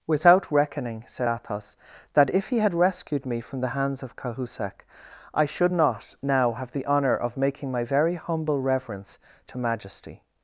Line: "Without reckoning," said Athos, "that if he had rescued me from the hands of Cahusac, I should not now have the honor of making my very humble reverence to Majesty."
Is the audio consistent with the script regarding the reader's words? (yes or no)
yes